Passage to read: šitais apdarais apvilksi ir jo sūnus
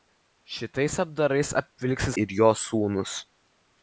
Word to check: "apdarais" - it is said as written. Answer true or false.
true